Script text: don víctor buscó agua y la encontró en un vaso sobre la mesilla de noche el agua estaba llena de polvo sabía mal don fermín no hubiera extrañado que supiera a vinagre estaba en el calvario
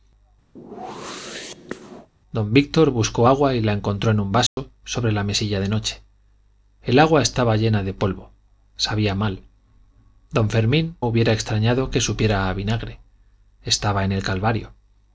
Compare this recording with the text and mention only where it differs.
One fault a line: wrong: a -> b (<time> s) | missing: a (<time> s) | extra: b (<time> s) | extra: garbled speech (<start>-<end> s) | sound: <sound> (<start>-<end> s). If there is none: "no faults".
sound: whoosh (0.6-2.1 s)
sound: dropout (4.5-4.6 s)
missing: no (10.9 s)